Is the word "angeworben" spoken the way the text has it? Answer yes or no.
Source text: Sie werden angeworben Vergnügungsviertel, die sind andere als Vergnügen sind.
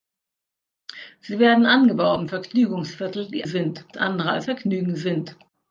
yes